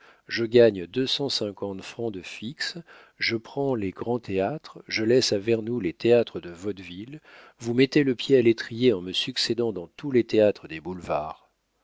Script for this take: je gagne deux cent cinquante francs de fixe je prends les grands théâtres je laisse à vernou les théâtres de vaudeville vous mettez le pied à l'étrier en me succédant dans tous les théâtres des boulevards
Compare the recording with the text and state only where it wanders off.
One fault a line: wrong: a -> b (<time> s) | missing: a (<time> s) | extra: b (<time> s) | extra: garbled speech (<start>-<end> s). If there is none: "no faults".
no faults